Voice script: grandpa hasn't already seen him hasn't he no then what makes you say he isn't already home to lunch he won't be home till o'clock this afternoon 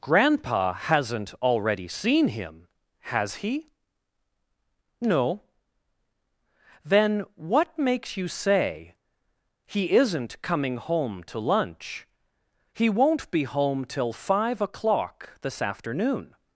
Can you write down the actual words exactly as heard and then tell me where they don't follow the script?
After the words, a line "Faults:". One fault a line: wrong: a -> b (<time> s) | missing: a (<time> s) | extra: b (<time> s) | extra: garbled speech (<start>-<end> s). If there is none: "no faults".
grandpa hasn't already seen him has he no then what makes you say he isn't coming home to lunch he won't be home till five o'clock this afternoon
Faults:
wrong: hasn't -> has (3.0 s)
wrong: already -> coming (10.4 s)
extra: five (14.1 s)